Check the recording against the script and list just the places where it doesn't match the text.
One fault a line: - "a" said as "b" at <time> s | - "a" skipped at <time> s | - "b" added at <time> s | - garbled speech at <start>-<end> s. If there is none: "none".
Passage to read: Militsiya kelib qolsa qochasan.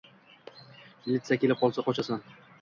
none